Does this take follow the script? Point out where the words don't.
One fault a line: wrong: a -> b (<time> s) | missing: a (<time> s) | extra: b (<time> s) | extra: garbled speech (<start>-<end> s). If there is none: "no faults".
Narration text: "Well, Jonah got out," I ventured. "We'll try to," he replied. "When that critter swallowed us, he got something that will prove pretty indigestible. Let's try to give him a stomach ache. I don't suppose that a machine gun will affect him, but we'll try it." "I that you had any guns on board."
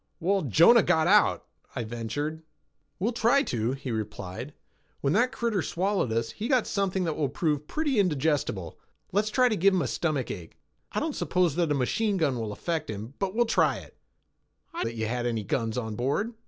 no faults